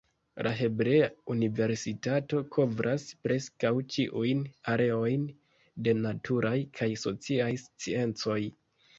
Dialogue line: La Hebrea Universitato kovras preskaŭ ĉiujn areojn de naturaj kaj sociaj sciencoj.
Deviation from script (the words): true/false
false